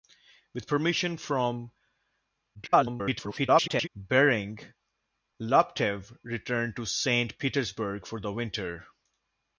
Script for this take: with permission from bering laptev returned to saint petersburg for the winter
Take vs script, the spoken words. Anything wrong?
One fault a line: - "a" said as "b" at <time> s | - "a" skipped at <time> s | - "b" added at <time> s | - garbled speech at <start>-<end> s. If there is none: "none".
- garbled speech at 2.5-3.9 s